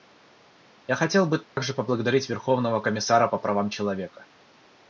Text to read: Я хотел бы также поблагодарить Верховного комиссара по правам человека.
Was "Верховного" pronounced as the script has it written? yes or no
yes